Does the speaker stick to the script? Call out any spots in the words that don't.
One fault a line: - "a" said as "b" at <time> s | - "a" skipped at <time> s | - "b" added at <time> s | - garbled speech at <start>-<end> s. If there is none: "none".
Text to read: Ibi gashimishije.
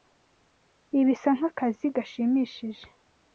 - "bisa nkakazi" added at 1.1 s